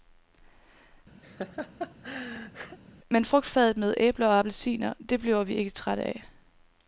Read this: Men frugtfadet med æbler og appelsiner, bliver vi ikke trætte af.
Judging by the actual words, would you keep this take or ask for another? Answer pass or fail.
fail